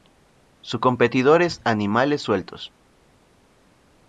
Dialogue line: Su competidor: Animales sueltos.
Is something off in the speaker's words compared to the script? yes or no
yes